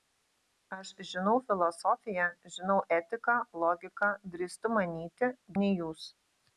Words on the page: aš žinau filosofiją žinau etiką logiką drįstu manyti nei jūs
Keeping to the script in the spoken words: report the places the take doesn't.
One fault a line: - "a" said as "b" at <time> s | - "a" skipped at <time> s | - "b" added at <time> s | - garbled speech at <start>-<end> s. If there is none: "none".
none